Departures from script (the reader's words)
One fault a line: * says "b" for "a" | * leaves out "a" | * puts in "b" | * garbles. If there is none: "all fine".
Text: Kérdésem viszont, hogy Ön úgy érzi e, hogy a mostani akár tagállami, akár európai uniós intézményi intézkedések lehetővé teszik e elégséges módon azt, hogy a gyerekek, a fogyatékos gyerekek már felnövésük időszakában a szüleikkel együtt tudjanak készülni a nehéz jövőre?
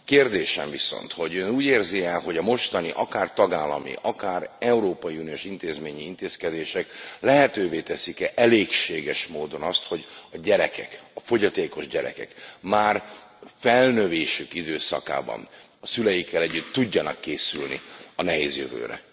all fine